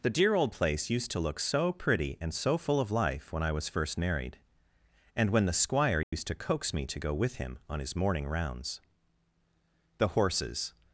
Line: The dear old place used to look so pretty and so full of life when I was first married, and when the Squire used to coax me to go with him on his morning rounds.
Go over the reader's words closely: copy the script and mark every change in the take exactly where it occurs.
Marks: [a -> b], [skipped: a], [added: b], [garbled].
The dear old place used to look so pretty and so full of life when I was first married, and when the Squire used to coax me to go with him on his morning rounds. [added: The horses]